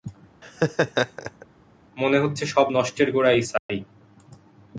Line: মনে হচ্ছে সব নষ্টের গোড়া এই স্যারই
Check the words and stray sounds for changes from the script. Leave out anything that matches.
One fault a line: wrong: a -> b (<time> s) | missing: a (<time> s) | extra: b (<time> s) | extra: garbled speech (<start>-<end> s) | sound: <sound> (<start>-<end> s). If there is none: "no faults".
sound: laugh (0.4-1.5 s)
sound: dropout (3.6-3.7 s)